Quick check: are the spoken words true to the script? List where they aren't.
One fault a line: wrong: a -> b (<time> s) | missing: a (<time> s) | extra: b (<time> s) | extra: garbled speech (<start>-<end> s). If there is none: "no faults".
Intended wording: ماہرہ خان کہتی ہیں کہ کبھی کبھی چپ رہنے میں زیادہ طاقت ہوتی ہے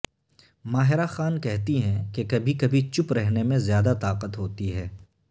no faults